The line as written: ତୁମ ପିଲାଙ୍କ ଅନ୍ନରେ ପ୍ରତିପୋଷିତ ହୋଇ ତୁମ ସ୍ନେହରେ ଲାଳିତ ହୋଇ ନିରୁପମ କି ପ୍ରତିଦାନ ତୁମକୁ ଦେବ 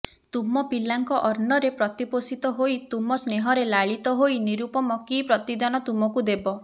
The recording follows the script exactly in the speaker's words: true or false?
true